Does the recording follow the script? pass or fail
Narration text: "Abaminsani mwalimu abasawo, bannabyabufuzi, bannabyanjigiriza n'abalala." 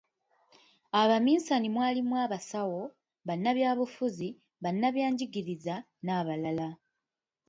pass